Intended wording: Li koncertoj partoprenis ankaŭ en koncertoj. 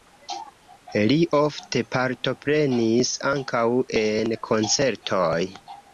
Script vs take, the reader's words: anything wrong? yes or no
yes